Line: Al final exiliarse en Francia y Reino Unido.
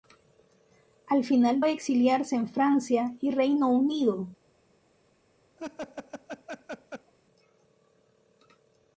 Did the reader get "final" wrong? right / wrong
right